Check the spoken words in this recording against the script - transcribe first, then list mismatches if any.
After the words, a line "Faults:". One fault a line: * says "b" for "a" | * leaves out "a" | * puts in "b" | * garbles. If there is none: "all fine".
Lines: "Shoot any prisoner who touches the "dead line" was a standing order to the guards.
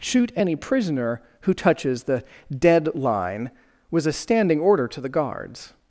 "Shoot any prisoner who touches the "dead line" was a standing order to the guards.
Faults:
all fine